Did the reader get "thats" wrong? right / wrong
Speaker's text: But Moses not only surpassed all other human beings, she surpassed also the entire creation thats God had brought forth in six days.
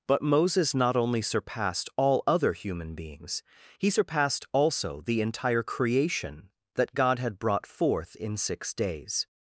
wrong